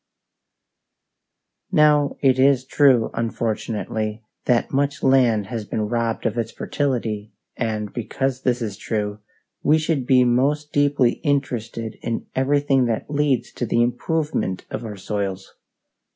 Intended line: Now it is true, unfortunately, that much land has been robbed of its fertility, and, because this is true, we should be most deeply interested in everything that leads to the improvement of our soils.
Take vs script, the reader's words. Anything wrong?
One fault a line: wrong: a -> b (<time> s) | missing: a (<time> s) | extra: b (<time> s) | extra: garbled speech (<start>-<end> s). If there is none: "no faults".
no faults